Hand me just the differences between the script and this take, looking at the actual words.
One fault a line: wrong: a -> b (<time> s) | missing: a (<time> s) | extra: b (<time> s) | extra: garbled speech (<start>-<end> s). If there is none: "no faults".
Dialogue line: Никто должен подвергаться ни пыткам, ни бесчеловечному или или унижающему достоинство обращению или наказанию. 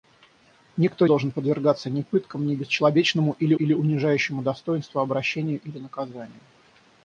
no faults